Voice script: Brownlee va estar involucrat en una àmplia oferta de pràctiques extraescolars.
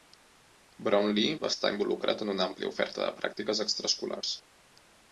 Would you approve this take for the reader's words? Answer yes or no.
yes